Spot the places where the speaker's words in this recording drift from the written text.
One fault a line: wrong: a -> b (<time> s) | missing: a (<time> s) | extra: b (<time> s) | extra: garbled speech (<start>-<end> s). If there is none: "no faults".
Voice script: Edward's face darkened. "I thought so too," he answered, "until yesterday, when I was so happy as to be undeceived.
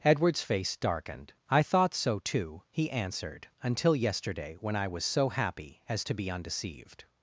no faults